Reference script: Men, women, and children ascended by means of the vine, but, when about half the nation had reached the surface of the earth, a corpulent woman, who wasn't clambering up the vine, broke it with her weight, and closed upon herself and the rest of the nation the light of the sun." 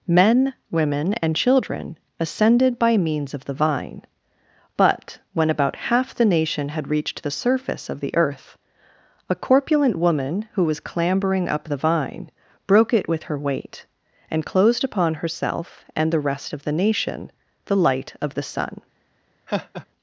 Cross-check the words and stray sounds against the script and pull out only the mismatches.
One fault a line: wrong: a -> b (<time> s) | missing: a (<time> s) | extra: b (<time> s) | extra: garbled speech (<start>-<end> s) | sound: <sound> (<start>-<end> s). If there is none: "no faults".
wrong: wasn't -> was (10.7 s)
sound: laugh (19.5-19.9 s)